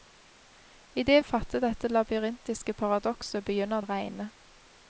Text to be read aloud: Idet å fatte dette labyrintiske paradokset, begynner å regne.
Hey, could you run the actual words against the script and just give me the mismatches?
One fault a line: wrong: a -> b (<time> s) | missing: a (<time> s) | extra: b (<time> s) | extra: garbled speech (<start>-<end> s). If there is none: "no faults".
no faults